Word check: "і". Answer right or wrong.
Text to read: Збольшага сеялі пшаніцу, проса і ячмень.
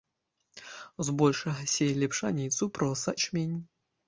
wrong